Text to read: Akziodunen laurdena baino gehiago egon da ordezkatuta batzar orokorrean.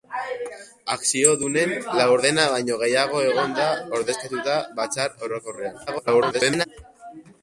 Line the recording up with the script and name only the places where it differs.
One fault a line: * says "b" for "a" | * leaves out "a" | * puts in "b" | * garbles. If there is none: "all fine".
* garbles